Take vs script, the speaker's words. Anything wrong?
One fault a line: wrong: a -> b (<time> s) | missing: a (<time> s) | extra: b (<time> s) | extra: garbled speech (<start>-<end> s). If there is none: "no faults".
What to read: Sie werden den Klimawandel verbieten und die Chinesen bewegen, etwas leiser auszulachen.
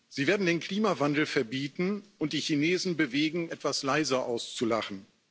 no faults